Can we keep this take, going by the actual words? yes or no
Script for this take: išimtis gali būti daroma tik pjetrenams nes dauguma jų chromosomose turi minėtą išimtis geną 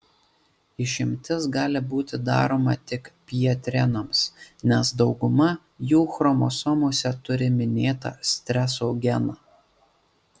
no